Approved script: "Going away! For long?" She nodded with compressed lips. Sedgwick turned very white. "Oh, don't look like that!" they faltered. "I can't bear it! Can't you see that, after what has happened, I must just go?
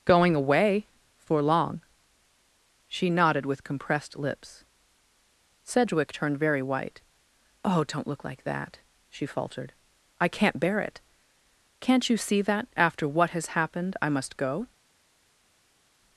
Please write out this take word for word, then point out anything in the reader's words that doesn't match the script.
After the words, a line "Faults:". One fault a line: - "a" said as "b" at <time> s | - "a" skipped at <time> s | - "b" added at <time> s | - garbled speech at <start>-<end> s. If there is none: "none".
"Going away! For long?" She nodded with compressed lips. Sedgwick turned very white. "Oh, don't look like that!" she faltered. "I can't bear it! Can't you see that, after what has happened, I must go?
Faults:
- "they" said as "she" at 9.1 s
- "just" skipped at 14.4 s